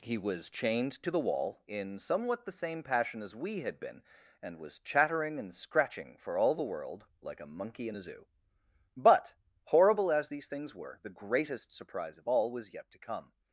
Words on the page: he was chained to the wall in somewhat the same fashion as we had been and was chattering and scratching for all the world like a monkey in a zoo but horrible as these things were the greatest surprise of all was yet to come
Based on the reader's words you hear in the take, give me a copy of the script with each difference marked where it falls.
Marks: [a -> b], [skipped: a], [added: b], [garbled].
he was chained to the wall in somewhat the same [fashion -> passion] as we had been and was chattering and scratching for all the world like a monkey in a zoo but horrible as these things were the greatest surprise of all was yet to come